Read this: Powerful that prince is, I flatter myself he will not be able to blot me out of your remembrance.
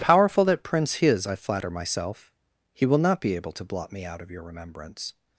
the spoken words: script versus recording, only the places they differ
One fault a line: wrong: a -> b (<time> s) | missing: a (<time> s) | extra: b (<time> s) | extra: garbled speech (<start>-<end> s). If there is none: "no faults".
no faults